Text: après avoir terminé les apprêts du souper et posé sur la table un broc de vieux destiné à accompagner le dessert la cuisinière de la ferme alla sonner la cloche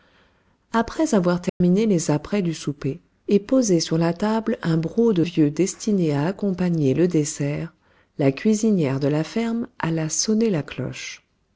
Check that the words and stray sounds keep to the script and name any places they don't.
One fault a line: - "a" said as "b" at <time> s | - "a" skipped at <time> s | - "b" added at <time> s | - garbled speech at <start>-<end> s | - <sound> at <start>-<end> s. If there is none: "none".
- dropout at 1.5-1.6 s